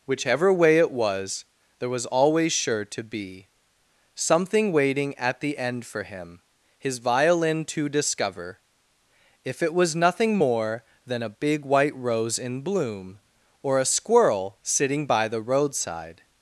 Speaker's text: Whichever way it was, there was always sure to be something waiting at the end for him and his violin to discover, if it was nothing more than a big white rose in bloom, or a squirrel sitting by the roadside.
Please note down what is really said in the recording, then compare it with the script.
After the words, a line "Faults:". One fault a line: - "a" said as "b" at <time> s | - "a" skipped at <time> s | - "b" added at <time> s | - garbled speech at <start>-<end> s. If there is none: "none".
Whichever way it was, there was always sure to be something waiting at the end for him his violin to discover, if it was nothing more than a big white rose in bloom, or a squirrel sitting by the roadside.
Faults:
- "and" skipped at 6.4 s